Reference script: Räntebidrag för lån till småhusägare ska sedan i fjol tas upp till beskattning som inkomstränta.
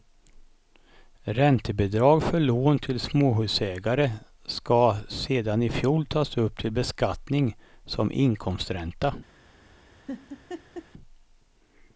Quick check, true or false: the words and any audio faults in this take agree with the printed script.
false